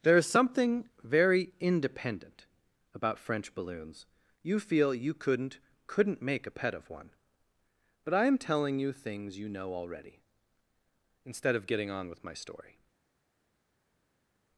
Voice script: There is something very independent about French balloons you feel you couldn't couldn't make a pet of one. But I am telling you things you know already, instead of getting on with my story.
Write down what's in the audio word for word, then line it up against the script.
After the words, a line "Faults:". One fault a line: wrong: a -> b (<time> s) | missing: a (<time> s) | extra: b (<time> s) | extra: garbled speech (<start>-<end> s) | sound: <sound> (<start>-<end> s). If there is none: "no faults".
There is something very independent about French balloons you feel you couldn't couldn't make a pet of one. But I am telling you things you know already, instead of getting on with my story.
Faults:
no faults